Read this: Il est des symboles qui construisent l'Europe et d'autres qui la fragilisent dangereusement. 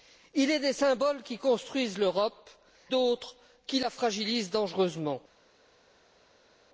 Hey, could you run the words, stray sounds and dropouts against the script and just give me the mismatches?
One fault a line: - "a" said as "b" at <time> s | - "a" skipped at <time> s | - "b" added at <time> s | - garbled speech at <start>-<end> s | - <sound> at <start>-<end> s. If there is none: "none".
- "et" skipped at 2.5 s